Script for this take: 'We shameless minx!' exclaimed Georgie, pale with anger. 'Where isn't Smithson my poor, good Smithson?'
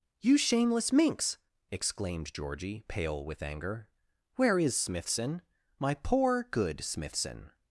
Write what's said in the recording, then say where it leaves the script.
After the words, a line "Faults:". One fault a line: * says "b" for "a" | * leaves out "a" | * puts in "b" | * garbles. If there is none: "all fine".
'You shameless minx!' exclaimed Georgie, pale with anger. 'Where is Smithson my poor, good Smithson?'
Faults:
* says "You" for "We"
* says "is" for "isn't"